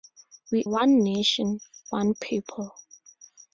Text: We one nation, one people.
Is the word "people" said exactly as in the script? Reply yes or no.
yes